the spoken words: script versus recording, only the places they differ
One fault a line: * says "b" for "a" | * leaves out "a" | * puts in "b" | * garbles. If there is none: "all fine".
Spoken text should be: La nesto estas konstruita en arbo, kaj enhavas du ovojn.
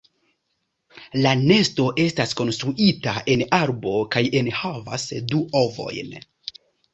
all fine